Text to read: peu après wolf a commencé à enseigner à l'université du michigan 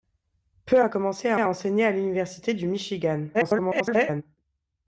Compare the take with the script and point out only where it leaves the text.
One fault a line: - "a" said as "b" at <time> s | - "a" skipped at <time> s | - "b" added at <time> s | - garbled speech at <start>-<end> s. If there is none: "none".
- "après wolf" skipped at 0.8 s
- "à" added at 1.4 s
- garbled speech at 3.3-4.2 s